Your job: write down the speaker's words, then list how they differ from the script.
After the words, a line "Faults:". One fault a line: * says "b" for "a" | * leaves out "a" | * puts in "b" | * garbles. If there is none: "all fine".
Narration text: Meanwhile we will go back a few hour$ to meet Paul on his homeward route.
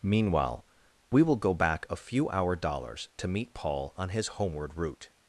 Meanwhile we will go back a few hour$ dollars to meet Paul on his homeward route.
Faults:
* puts in "dollars"